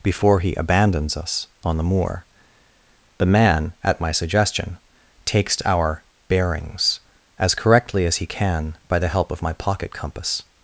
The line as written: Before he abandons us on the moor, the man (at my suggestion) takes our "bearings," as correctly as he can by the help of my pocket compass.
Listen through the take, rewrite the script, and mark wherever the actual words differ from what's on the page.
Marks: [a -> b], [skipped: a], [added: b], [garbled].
Before he abandons us on the moor, the man (at my suggestion) takes our "bearings," as correctly as he can by the help of my pocket compass.